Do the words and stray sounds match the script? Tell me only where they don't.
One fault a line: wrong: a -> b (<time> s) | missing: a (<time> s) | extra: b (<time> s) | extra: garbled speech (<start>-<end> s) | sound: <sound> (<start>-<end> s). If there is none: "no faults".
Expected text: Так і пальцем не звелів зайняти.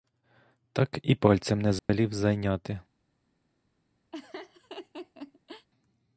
sound: dropout (1.8-1.9 s)
sound: laugh (4.1-5.7 s)